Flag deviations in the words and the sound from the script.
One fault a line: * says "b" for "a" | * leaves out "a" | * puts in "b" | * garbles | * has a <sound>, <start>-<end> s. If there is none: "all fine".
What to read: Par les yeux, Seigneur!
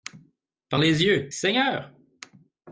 all fine